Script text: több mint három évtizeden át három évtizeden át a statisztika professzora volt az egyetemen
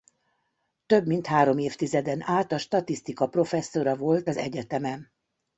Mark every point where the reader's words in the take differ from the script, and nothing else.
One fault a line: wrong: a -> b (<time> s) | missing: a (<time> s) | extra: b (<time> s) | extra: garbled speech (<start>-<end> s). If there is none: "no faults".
missing: három évtizeden át (2.5 s)